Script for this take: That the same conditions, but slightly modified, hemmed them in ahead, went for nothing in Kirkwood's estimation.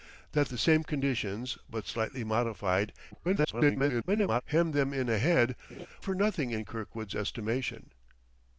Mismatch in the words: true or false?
true